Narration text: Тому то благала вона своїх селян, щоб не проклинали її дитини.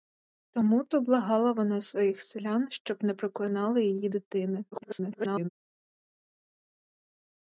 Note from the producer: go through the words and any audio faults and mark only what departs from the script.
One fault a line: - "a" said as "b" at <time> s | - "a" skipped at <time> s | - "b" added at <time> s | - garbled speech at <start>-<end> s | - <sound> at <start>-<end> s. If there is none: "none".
- garbled speech at 4.7-5.5 s